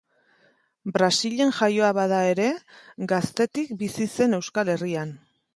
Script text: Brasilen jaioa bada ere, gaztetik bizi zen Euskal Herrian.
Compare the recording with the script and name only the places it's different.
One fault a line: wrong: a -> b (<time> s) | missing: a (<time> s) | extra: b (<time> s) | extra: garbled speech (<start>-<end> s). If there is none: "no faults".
no faults